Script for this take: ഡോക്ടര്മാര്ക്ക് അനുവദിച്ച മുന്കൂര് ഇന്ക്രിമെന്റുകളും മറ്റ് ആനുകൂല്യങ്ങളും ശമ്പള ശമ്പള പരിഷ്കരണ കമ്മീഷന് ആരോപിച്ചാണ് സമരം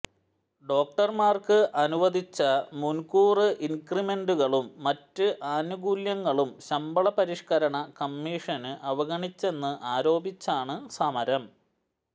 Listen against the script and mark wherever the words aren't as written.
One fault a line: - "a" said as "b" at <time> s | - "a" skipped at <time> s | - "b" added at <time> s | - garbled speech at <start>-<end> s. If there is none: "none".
- "ശമ്പള" skipped at 7.1 s
- "അവഗണിച്ചെന്ന്" added at 8.9 s